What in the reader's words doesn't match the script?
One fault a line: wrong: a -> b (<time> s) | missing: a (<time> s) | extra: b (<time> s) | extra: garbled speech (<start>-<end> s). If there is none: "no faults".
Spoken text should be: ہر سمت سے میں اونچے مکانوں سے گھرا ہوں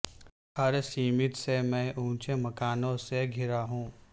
no faults